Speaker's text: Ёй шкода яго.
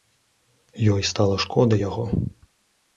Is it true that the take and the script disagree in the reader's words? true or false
true